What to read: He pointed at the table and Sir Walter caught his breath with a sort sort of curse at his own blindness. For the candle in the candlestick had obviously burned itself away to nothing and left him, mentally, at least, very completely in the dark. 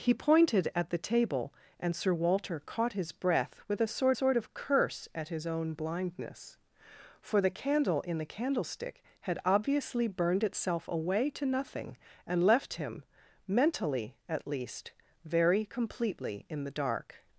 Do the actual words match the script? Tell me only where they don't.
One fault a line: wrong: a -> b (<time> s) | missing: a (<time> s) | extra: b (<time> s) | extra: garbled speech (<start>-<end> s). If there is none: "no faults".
no faults